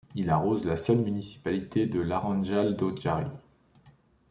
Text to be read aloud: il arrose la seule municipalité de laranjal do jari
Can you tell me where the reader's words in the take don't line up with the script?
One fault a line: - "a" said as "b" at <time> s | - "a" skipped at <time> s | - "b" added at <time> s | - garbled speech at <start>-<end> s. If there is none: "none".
none